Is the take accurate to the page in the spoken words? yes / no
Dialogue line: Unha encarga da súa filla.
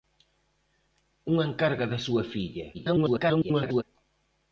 no